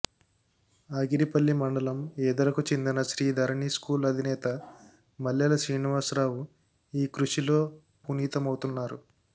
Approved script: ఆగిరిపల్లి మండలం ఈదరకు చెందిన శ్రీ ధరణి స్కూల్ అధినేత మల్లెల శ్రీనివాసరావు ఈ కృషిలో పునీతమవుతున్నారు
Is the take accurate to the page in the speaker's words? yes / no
yes